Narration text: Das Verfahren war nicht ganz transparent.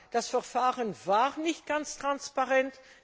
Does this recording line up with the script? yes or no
yes